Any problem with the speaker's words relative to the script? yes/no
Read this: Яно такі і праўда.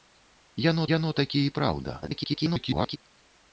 yes